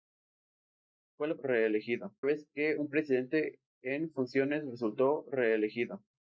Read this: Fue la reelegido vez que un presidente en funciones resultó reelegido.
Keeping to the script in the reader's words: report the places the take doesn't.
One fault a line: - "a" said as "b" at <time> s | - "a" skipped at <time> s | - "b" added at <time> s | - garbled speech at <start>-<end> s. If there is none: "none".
none